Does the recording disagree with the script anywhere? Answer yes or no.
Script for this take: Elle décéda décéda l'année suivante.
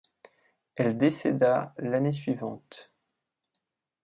yes